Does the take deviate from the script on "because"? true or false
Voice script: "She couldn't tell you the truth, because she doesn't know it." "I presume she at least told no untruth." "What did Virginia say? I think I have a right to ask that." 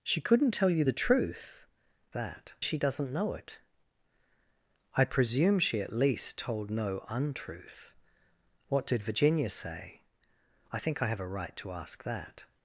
true